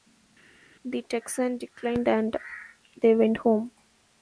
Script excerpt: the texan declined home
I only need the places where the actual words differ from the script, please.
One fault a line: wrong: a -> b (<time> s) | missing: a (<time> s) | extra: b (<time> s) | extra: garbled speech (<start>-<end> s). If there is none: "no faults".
extra: and they went (2.1 s)